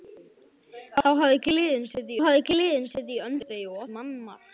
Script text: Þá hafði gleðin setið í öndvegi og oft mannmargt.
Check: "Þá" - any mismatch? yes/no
no